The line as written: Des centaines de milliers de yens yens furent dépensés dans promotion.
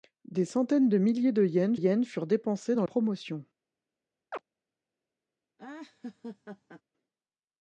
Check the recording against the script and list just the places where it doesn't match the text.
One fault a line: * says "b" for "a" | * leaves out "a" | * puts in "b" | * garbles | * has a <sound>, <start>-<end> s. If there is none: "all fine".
* has a chirp, 4.3-4.4 s
* has a laugh, 5.6-6.8 s